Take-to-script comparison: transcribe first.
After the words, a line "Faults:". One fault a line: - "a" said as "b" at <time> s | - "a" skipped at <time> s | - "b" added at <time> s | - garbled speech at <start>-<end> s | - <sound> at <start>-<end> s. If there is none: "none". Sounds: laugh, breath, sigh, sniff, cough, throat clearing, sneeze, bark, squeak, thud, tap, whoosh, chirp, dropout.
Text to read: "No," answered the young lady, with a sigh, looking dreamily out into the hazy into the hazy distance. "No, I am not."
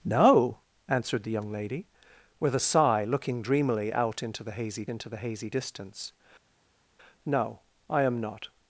"No," answered the young lady, with a sigh, looking dreamily out into the hazy into the hazy distance. "No, I am not."
Faults:
none